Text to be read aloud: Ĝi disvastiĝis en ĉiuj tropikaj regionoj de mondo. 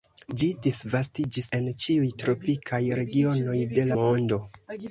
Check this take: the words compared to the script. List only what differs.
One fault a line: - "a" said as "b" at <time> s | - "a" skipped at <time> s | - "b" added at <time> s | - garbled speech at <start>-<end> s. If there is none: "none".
none